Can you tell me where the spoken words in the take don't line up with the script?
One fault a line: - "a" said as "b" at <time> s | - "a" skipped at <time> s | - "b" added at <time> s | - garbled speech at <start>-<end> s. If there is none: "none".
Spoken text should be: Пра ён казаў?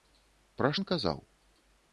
none